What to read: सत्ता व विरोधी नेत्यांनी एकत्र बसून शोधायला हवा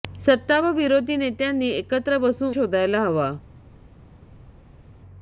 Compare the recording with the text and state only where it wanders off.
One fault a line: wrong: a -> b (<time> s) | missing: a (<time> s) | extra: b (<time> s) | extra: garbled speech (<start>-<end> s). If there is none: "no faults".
no faults